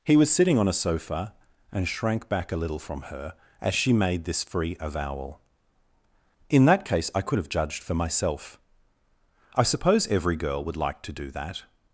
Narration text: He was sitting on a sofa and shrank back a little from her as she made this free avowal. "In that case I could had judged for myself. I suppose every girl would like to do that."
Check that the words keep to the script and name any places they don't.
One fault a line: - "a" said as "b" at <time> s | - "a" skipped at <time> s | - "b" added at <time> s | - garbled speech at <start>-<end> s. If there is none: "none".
- "had" said as "have" at 7.4 s